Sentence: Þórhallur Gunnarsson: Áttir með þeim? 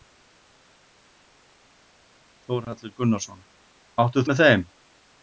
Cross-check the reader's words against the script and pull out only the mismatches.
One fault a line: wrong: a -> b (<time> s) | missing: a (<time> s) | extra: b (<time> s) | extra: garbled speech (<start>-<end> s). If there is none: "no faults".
no faults